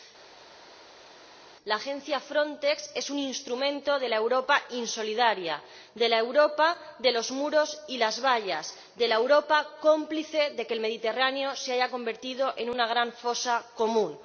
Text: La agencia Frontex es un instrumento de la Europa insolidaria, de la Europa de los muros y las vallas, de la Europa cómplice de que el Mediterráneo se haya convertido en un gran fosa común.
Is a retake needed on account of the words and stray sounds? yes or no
yes